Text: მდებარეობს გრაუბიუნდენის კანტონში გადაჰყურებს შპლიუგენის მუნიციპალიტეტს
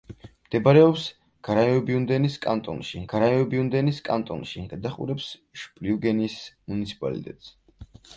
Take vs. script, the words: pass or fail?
fail